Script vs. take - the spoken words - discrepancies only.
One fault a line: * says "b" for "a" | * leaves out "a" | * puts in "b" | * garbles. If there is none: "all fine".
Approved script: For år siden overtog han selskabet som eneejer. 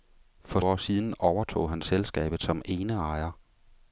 all fine